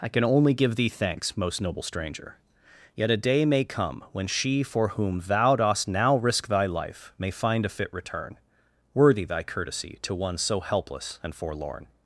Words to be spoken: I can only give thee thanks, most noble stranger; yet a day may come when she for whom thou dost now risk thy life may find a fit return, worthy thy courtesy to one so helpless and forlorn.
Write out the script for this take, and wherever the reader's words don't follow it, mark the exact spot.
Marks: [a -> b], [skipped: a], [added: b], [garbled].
I can only give thee thanks, most noble stranger; yet a day may come when she for whom thou dost now risk thy life may find a fit return, worthy thy courtesy to one so helpless and forlorn.